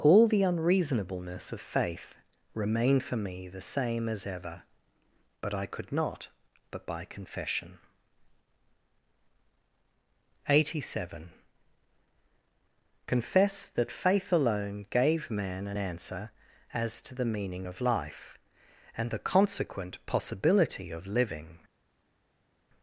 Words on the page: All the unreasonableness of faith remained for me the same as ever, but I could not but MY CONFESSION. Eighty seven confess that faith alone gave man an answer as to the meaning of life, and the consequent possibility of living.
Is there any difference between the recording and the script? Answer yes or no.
yes